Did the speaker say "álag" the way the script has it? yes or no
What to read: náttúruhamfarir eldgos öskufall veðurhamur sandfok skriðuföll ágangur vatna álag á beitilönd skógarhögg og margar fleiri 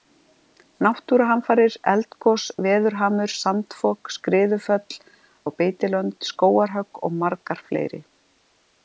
no